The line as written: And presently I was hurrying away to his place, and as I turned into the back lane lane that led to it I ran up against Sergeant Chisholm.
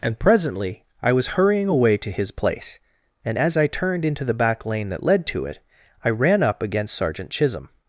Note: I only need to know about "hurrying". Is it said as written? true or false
true